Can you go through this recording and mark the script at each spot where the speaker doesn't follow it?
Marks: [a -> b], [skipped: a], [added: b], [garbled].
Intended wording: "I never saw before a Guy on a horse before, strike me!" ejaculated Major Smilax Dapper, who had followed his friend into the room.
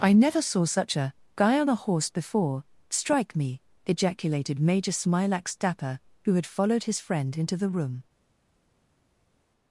"I never saw [before -> such] a Guy on a horse before, strike me!" ejaculated Major Smilax Dapper, who had followed his friend into the room.